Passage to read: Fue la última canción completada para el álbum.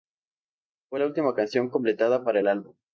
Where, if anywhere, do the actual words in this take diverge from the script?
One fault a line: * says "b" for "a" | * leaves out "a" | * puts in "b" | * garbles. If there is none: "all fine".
all fine